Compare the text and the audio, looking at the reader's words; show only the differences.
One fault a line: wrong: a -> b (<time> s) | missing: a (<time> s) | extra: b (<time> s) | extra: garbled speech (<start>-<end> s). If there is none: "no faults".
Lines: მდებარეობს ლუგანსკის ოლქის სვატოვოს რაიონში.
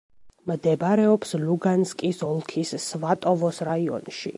no faults